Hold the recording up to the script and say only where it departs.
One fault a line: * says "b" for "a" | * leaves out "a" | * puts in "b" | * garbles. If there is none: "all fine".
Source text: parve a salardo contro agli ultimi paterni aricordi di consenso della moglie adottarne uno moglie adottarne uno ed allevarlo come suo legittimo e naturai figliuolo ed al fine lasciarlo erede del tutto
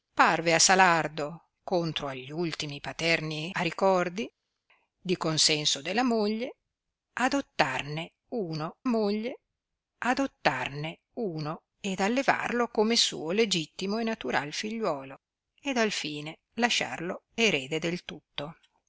all fine